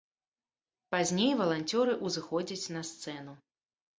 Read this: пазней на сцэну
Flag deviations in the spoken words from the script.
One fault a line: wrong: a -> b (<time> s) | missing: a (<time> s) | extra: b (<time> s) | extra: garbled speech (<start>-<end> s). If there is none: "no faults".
extra: валанцёры ўзыходзяць (1.4 s)